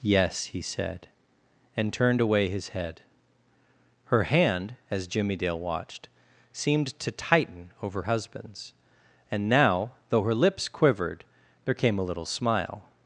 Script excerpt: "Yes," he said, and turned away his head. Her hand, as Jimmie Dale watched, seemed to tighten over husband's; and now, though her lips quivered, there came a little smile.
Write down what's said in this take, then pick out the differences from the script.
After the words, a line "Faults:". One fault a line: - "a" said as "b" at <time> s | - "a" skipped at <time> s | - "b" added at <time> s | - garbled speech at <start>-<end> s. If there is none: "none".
"Yes," he said, and turned away his head. Her hand, as Jimmie Dale watched, seemed to tighten over husband's; and now, though her lips quivered, there came a little smile.
Faults:
none